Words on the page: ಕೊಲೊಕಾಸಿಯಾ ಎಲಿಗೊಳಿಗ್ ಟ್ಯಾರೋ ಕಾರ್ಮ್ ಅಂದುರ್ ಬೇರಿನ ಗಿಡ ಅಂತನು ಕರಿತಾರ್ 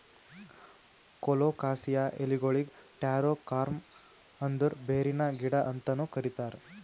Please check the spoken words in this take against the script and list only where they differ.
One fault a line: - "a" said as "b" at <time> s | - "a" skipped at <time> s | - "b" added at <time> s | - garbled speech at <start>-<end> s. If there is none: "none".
none